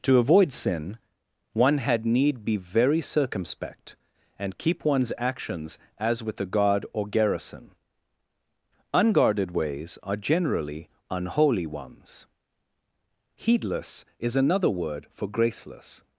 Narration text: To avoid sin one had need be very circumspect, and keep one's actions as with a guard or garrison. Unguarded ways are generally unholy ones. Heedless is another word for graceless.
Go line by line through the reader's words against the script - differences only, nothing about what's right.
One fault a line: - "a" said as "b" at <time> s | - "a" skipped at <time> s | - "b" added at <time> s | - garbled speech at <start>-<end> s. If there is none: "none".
none